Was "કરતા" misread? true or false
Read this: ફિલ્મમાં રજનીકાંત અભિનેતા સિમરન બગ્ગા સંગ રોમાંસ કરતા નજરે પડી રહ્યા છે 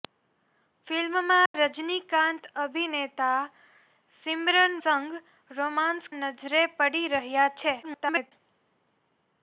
true